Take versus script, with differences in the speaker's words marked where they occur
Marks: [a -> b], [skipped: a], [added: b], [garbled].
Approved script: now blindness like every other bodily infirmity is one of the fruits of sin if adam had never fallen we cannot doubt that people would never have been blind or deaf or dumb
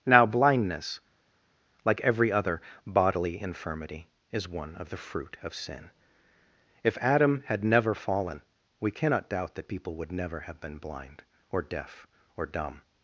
now blindness like every other bodily infirmity is one of the [fruits -> fruit] of sin if adam had never fallen we cannot doubt that people would never have been blind or deaf or dumb